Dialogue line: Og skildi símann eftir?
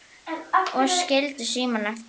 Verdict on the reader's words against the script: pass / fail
pass